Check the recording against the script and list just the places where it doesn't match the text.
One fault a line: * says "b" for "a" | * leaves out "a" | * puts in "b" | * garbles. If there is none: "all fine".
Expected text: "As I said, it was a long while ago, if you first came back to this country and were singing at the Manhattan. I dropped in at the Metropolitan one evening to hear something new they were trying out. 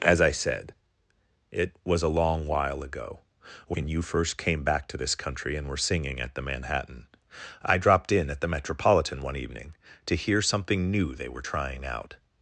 * says "when" for "if"